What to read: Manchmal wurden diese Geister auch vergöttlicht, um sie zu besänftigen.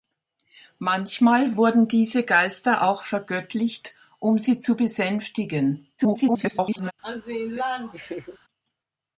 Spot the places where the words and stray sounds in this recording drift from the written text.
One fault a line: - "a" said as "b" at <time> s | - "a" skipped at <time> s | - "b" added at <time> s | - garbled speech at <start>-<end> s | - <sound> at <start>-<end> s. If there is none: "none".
- garbled speech at 6.0-6.9 s
- laugh at 7.0-8.4 s